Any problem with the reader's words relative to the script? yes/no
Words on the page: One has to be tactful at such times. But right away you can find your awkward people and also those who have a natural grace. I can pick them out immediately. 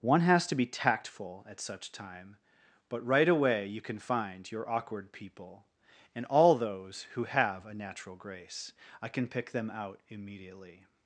yes